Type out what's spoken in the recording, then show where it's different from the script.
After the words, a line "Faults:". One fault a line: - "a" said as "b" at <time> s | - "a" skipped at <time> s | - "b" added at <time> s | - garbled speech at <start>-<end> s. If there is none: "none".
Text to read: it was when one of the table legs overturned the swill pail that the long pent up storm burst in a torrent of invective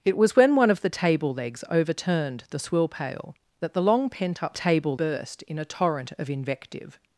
it was when one of the table legs overturned the swill pail that the long pent up table burst in a torrent of invective
Faults:
- "storm" said as "table" at 4.5 s